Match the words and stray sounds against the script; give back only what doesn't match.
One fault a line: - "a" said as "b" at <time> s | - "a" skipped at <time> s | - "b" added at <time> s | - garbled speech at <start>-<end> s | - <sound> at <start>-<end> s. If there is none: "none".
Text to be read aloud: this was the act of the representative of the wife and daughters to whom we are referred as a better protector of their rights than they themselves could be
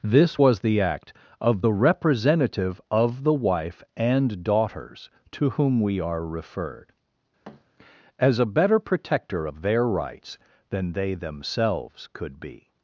- thud at 7.4-7.6 s